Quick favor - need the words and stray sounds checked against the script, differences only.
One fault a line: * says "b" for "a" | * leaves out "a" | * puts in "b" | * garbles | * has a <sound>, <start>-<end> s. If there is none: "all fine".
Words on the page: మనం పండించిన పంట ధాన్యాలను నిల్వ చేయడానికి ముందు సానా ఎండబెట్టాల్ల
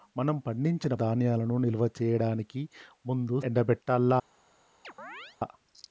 * leaves out "పంట"
* leaves out "సానా"
* has a chirp, 4.8-5.4 s